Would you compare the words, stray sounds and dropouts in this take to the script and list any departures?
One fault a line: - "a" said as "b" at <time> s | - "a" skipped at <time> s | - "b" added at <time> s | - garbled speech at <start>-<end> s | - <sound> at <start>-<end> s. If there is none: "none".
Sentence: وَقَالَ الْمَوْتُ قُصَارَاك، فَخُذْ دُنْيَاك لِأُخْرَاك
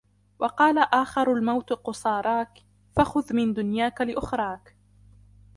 - "آخَرُ" added at 0.8 s
- "مِنْ" added at 3.4 s